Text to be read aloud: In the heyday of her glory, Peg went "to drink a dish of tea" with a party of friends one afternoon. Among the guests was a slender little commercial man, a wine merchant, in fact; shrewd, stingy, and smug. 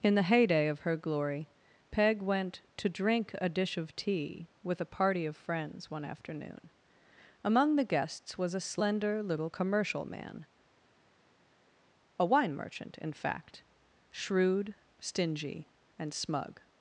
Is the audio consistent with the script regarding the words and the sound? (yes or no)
yes